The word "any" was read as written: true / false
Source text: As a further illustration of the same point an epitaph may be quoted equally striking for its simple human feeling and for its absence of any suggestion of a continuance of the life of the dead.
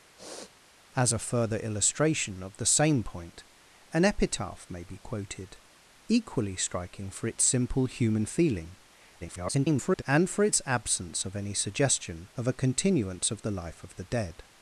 true